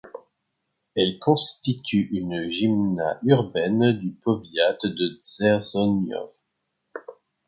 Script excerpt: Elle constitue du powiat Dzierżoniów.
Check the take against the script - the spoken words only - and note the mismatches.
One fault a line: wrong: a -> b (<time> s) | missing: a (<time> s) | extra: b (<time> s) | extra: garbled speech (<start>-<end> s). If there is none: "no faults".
extra: une gmina urbaine (2.1 s)
extra: de (4.8 s)